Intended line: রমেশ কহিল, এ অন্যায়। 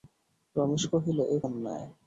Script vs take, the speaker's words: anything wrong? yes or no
no